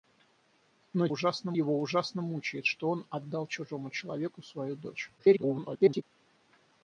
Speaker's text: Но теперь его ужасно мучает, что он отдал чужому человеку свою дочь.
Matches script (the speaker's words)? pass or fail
fail